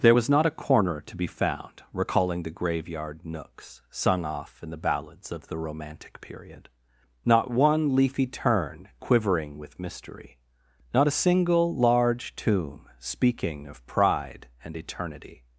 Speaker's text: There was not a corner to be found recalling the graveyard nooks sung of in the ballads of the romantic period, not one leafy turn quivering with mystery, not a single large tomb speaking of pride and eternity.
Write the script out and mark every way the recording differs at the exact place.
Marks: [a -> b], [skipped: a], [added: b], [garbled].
There was not a corner to be found recalling the graveyard nooks sung [of -> off] in the ballads of the romantic period, not one leafy turn quivering with mystery, not a single large tomb speaking of pride and eternity.